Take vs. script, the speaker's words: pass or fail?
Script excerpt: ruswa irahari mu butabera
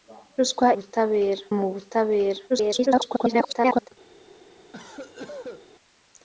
fail